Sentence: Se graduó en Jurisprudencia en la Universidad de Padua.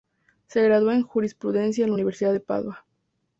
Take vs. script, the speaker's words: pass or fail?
pass